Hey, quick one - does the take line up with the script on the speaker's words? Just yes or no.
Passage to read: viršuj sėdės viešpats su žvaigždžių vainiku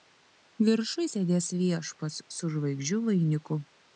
yes